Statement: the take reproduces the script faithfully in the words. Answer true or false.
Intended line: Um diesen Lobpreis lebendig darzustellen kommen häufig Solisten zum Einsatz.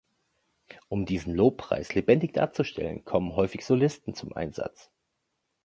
true